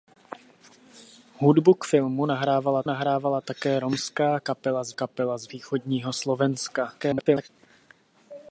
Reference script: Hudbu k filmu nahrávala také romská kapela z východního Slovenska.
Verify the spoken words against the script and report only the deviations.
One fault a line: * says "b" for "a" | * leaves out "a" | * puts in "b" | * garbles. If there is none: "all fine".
* puts in "nahrávala"
* puts in "kapela z"
* garbles